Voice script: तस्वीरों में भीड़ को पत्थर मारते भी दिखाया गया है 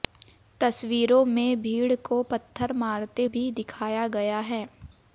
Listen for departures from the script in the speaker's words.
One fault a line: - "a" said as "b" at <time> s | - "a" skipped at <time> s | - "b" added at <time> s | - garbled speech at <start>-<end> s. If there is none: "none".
none